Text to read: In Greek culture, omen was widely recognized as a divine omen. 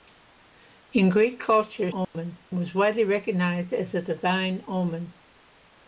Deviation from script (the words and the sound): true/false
true